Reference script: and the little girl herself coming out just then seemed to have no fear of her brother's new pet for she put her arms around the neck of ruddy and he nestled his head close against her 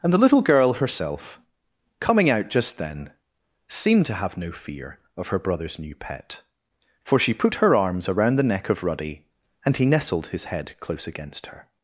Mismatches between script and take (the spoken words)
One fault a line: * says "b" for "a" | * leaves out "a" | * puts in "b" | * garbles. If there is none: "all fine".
all fine